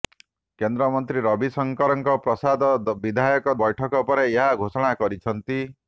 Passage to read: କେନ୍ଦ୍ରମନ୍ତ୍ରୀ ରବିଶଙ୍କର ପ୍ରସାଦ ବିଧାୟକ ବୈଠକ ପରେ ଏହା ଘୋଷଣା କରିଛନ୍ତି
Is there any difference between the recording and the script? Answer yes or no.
no